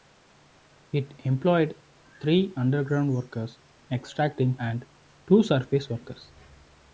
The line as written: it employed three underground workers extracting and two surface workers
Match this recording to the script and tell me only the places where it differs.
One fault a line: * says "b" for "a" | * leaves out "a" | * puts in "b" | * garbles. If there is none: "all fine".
all fine